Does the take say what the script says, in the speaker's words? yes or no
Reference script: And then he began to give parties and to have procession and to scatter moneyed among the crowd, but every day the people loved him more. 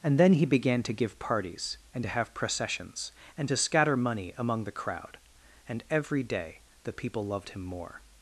no